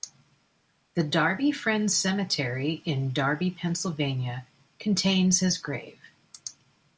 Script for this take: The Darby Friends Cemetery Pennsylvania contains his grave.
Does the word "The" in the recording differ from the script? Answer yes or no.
no